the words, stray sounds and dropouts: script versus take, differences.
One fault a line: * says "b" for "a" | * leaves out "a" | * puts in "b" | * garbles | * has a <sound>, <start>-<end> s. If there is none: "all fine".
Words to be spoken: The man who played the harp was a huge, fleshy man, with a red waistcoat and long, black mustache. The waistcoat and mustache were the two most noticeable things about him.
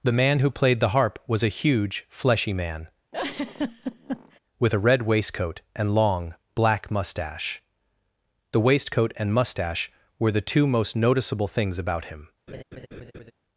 * has a laugh, 3.1-4.4 s
* has a laugh, 12.5-13.3 s